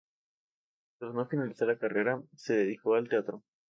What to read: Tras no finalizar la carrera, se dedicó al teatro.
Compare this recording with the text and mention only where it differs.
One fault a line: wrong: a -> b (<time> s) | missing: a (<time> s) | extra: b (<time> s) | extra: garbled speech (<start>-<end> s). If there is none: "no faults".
no faults